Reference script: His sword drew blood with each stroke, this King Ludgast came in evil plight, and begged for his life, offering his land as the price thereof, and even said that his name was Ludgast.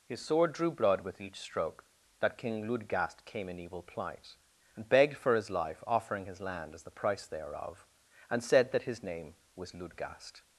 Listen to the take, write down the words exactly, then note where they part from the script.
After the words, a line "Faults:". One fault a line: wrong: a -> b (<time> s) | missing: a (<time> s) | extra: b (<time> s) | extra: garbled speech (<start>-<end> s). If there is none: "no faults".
His sword drew blood with each stroke, that King Ludgast came in evil plight, and begged for his life, offering his land as the price thereof, and said that his name was Ludgast.
Faults:
wrong: this -> that (2.2 s)
missing: even (8.4 s)